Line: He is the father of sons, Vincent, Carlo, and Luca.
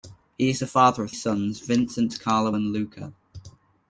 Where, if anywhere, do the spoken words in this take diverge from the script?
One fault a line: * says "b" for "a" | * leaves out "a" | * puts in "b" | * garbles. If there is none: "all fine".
all fine